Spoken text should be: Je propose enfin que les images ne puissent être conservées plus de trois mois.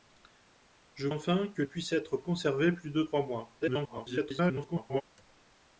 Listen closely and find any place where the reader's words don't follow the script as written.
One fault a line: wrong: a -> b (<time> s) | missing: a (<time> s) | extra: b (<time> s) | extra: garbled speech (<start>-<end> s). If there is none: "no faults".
missing: propose (1.1 s)
missing: les images ne (1.6 s)
extra: garbled speech (3.6-5.0 s)